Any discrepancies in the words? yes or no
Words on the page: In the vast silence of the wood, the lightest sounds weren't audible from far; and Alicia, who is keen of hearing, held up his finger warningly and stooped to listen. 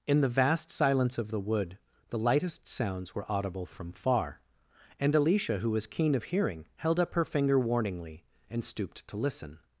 yes